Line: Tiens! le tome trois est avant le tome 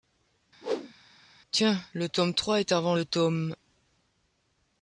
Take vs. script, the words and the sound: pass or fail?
fail